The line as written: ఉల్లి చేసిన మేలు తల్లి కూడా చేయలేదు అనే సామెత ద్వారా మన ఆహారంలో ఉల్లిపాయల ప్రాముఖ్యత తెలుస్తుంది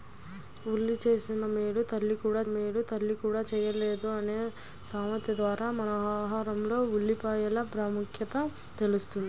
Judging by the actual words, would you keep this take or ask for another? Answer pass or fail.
fail